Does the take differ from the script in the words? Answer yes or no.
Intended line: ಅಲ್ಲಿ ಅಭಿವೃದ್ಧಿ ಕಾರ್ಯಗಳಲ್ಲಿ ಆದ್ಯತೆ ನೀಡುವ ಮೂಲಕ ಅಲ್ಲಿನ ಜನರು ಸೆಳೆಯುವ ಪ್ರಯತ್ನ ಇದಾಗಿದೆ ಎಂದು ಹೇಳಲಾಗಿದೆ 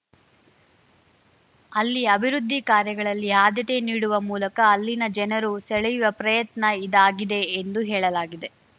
no